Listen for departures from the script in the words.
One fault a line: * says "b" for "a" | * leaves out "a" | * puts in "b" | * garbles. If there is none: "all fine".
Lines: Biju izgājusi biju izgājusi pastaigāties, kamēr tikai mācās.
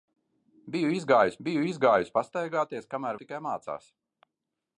all fine